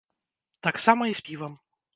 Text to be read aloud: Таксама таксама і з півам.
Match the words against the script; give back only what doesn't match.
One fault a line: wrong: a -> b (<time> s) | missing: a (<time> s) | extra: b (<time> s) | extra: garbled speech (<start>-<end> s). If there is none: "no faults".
missing: таксама (1.1 s)